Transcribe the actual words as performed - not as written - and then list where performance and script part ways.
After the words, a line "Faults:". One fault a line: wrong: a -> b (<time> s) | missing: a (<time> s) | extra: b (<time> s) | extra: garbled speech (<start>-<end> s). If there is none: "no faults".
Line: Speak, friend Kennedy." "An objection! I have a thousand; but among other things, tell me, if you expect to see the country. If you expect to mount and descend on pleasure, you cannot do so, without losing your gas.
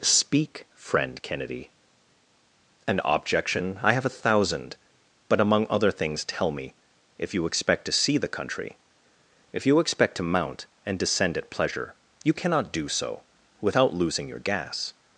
Speak, friend Kennedy." "An objection! I have a thousand; but among other things, tell me, if you expect to see the country. If you expect to mount and descend at pleasure, you cannot do so, without losing your gas.
Faults:
wrong: on -> at (11.4 s)